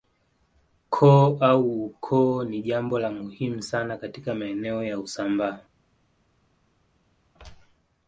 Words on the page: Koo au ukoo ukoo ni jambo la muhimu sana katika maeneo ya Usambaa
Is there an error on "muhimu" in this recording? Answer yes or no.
no